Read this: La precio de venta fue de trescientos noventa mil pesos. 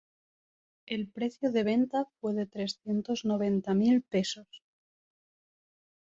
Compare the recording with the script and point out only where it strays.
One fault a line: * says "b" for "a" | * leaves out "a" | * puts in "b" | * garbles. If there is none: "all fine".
* says "El" for "La"